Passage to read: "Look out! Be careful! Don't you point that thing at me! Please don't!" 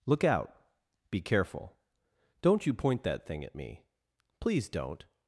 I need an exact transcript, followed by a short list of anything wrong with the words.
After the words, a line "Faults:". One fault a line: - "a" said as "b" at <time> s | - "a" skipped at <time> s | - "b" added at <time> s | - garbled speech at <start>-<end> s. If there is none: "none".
"Look out! Be careful! Don't you point that thing at me! Please don't!"
Faults:
none